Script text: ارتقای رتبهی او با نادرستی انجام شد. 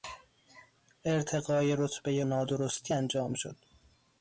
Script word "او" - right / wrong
wrong